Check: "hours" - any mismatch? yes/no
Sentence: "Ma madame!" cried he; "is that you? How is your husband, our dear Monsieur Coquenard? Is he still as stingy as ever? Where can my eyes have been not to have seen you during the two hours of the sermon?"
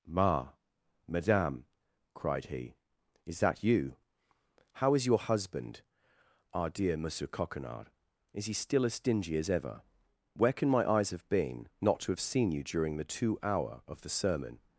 yes